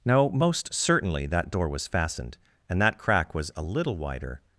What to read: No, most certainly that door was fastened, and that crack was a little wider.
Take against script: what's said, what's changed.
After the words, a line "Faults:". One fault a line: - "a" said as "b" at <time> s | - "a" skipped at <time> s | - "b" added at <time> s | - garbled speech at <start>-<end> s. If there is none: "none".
No, most certainly that door was fastened, and that crack was a little wider.
Faults:
none